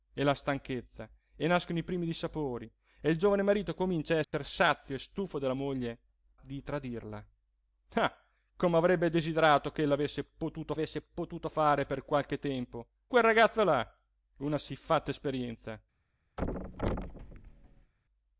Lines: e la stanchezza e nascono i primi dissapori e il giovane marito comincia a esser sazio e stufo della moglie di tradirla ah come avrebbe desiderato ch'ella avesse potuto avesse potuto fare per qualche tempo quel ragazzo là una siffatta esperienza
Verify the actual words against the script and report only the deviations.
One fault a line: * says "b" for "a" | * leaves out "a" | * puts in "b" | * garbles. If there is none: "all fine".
all fine